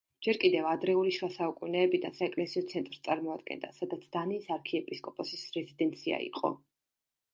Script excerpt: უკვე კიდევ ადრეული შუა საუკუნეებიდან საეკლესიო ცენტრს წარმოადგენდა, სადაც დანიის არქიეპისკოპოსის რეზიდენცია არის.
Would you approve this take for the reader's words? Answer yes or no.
no